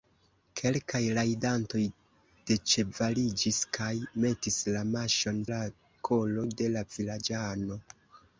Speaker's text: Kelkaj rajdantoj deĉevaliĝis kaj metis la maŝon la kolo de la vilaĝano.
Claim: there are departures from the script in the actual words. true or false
false